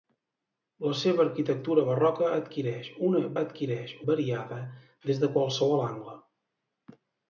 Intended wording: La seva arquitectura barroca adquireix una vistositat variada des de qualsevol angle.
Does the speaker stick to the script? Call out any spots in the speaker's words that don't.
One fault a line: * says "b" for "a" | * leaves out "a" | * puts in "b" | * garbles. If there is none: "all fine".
* says "adquireix" for "vistositat"